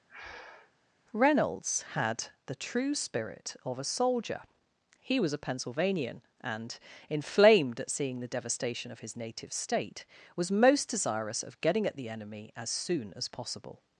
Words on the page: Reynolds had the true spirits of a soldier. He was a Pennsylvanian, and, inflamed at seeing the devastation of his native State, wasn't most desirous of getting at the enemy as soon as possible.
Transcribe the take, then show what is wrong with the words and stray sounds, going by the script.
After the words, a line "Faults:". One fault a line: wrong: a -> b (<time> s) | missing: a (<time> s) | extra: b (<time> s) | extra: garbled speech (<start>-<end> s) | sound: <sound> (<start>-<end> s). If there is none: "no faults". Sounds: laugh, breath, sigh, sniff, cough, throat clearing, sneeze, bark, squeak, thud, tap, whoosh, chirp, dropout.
Reynolds had the true spirit of a soldier. He was a Pennsylvanian, and, inflamed at seeing the devastation of his native State, was most desirous of getting at the enemy as soon as possible.
Faults:
sound: breath (0.1-0.7 s)
wrong: spirits -> spirit (2.9 s)
wrong: wasn't -> was (10.4 s)